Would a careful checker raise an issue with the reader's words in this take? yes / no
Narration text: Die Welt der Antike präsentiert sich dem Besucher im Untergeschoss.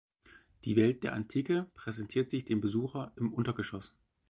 no